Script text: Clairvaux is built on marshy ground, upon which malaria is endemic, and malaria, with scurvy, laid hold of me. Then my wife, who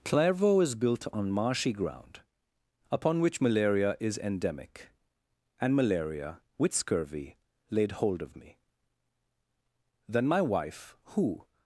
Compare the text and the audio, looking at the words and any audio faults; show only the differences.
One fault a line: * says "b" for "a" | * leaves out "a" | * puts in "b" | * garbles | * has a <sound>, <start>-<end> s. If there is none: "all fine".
all fine